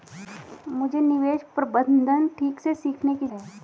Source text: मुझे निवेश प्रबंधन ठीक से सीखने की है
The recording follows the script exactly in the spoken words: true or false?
true